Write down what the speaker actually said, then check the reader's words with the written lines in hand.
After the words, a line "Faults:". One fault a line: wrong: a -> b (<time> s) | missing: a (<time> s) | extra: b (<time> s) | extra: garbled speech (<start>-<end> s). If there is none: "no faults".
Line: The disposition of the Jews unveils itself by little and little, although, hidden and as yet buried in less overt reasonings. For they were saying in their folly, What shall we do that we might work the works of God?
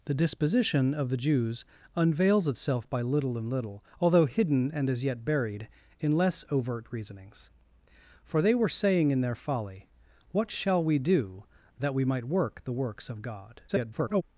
The disposition of the Jews unveils itself by little and little, although, hidden and as yet buried in less overt reasonings. For they were saying in their folly, What shall we do that we might work the works of God? [garbled]
Faults:
extra: garbled speech (13.7-14.2 s)